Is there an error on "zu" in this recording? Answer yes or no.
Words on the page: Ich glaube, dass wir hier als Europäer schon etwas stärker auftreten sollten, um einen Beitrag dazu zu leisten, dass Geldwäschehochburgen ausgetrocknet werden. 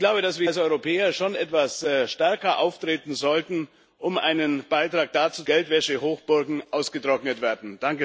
yes